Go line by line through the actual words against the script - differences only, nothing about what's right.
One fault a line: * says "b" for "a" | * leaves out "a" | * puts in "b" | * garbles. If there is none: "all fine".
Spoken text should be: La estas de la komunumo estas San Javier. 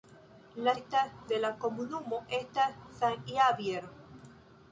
all fine